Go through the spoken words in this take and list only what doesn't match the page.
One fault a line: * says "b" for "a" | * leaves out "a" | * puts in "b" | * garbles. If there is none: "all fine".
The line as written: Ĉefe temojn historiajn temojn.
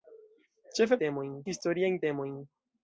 all fine